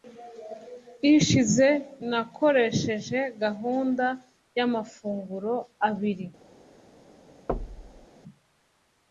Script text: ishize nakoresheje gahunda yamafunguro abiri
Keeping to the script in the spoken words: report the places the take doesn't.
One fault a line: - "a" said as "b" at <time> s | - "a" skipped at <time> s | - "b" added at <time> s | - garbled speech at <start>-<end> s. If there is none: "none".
none